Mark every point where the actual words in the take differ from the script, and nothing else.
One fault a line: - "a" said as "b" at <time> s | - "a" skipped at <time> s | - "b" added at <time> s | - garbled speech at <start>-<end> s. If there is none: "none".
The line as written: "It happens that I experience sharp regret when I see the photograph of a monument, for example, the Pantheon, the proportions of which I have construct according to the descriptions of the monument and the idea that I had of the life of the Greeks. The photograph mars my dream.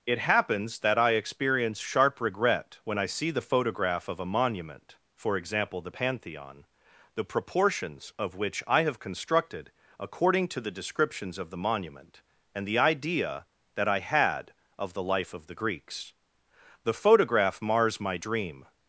- "construct" said as "constructed" at 9.0 s